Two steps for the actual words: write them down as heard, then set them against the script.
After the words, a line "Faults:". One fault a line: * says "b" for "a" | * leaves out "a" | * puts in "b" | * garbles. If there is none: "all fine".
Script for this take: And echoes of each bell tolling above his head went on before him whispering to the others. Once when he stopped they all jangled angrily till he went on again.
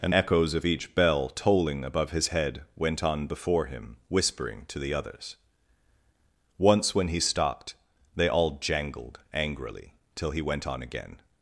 And echoes of each bell tolling above his head went on before him whispering to the others. Once when he stopped they all jangled angrily till he went on again.
Faults:
all fine